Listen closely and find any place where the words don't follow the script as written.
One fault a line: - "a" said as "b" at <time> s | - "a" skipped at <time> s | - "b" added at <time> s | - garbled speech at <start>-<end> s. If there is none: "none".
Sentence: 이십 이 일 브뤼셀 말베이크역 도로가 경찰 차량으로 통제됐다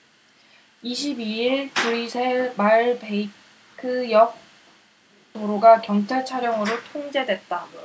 none